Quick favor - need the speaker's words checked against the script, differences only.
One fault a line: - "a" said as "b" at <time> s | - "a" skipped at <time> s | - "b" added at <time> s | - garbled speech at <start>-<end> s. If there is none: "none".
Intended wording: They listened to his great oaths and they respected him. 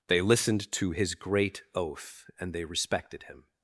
- "oaths" said as "oath" at 1.8 s